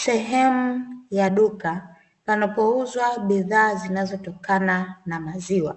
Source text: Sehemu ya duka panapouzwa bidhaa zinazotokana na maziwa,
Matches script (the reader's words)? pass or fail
pass